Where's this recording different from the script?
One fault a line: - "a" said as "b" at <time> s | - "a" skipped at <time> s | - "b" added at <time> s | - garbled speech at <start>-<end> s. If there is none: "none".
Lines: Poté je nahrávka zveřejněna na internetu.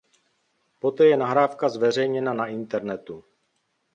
none